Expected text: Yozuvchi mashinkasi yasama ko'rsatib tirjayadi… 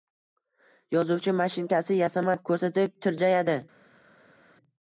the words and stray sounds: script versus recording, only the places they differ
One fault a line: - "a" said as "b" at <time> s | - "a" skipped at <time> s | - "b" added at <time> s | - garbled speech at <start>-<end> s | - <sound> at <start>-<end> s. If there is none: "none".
none